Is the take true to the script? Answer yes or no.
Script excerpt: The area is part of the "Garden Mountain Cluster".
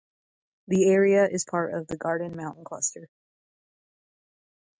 yes